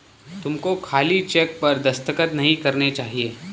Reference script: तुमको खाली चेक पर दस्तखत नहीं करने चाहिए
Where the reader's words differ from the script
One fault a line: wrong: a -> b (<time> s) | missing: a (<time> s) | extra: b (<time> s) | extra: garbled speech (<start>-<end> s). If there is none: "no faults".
no faults